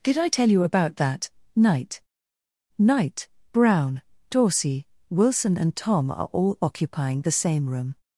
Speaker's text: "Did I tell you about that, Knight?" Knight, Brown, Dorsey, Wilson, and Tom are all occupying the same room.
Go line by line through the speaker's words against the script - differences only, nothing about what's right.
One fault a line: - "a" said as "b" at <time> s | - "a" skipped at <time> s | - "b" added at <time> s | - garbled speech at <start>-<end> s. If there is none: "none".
none